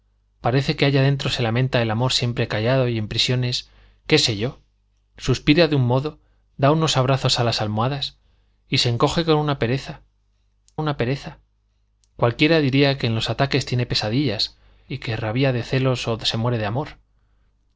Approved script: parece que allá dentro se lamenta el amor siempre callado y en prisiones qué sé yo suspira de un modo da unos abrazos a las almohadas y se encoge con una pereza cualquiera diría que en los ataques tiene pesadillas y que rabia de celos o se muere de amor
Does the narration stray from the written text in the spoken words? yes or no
yes